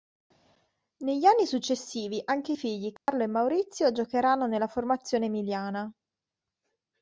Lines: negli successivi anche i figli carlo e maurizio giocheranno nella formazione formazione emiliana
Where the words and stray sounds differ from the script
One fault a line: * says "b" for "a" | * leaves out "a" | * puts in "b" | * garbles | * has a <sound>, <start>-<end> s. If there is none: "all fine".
* puts in "anni"
* has a dropout, 3.0-3.1 s
* leaves out "formazione"